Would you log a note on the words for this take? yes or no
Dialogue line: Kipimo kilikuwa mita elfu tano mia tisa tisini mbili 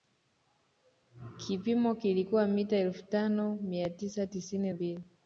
no